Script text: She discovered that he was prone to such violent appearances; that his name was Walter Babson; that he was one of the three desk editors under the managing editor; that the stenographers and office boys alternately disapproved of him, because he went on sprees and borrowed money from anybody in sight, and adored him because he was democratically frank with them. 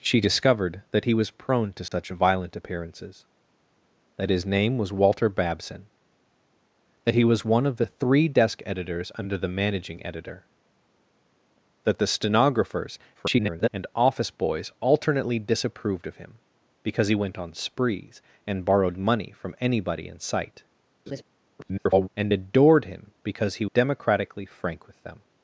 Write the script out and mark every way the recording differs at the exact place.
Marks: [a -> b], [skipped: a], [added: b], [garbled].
She discovered that he was prone to such violent appearances; that his name was Walter Babson; that he was one of the three desk editors under the managing editor; that the stenographers [garbled] and office boys alternately disapproved of him, because he went on sprees and borrowed money from anybody in sight, [garbled] and adored him because he [skipped: was] democratically frank with them.